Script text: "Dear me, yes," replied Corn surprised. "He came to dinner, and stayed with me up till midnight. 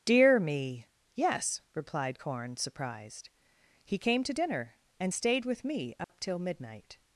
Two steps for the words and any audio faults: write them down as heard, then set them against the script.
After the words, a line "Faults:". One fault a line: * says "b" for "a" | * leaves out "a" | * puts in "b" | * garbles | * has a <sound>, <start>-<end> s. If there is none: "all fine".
"Dear me, yes," replied Corn surprised. "He came to dinner, and stayed with me up till midnight.
Faults:
* has a dropout, 6.0-6.1 s